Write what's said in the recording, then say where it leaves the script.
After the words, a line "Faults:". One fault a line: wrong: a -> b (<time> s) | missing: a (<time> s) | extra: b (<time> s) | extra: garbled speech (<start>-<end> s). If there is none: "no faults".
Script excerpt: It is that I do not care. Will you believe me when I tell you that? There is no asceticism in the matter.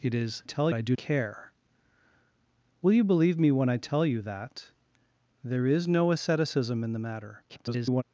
It is tell I do care. Will you believe me when I tell you that? There is no asceticism in the matter. [garbled]
Faults:
wrong: that -> tell (0.4 s)
missing: not (1.0 s)
extra: garbled speech (7.5-8.0 s)